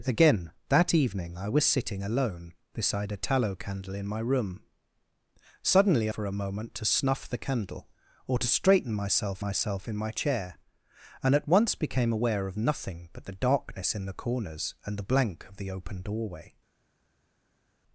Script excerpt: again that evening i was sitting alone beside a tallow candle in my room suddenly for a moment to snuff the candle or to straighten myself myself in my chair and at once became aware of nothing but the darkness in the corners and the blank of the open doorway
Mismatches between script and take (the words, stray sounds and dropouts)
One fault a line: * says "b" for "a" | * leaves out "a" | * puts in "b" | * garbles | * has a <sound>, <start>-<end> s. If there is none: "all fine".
all fine